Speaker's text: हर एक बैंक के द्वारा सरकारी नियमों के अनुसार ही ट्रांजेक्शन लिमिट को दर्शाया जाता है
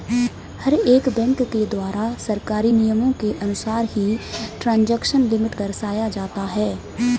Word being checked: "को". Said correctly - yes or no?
no